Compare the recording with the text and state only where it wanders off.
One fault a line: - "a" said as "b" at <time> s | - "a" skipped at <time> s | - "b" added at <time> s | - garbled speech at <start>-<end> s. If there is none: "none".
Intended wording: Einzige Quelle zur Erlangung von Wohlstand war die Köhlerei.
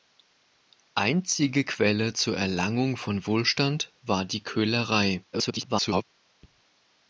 - garbled speech at 5.3-6.0 s